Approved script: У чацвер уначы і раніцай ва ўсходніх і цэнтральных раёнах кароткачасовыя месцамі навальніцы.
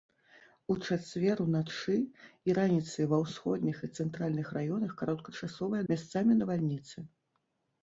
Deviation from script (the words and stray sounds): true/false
false